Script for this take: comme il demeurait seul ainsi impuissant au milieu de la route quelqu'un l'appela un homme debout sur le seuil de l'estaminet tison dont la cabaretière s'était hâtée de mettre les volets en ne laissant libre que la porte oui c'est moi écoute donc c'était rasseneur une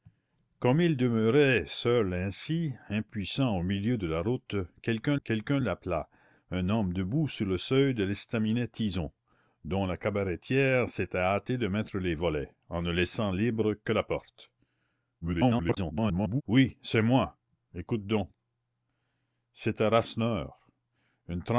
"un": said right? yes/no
yes